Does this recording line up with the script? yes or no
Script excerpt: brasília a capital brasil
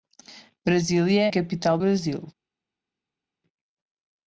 yes